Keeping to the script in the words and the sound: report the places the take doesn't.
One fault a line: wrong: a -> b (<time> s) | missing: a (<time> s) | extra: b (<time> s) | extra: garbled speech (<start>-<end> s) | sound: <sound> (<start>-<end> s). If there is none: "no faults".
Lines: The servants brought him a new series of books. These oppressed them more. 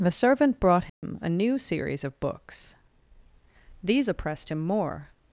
wrong: servants -> servant (0.1 s)
sound: dropout (0.9-1.0 s)
wrong: them -> him (4.5 s)